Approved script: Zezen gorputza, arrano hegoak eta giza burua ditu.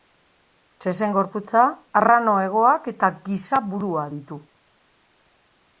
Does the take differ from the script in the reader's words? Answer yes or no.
no